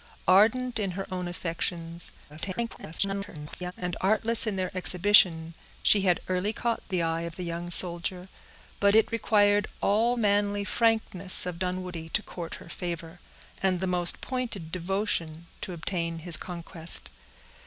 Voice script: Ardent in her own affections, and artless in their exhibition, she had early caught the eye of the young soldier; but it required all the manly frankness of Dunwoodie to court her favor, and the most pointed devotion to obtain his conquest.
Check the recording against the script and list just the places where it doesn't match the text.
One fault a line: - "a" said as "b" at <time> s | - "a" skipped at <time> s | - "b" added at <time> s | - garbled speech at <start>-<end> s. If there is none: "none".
- garbled speech at 2.3-3.7 s
- "the" skipped at 10.2 s